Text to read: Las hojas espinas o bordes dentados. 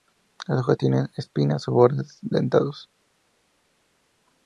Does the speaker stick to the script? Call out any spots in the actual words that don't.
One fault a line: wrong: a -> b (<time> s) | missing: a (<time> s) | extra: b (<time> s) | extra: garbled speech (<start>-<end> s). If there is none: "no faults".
extra: tienen (0.8 s)